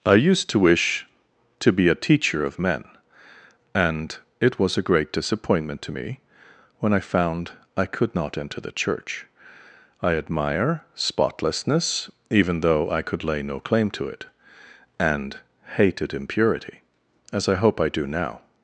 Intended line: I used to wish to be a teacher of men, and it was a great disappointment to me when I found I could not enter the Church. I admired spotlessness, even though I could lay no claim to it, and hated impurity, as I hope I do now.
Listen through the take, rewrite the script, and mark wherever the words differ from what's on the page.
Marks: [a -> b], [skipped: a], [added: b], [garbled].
I used to wish to be a teacher of men, and it was a great disappointment to me when I found I could not enter the Church. I [admired -> admire] spotlessness, even though I could lay no claim to it, and hated impurity, as I hope I do now.